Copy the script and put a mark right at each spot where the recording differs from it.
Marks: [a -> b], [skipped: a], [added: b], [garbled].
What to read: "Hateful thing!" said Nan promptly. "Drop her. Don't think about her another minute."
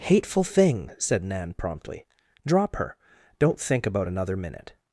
"Hateful thing!" said Nan promptly. "Drop her. Don't think about [skipped: her] another minute."